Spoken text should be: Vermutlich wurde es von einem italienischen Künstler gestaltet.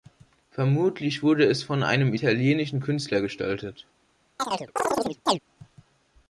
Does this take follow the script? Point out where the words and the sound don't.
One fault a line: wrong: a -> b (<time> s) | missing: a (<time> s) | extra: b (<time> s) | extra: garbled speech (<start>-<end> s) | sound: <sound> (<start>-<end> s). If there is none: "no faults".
sound: chirp (4.4-5.4 s)